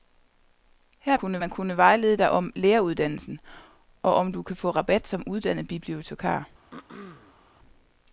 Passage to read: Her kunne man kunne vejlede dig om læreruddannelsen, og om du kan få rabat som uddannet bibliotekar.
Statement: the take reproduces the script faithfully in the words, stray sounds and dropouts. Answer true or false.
false